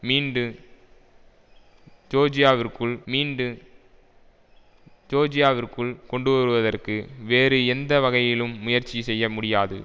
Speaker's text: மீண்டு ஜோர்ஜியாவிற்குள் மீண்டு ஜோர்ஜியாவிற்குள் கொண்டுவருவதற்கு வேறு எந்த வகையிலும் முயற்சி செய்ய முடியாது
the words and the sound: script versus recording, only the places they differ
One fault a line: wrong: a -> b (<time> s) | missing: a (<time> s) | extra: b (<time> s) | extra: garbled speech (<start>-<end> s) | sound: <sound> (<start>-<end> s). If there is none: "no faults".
no faults